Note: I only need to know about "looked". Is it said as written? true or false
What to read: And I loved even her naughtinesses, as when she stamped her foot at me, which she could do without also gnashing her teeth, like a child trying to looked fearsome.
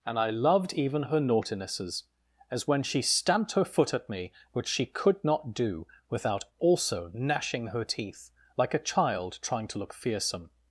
false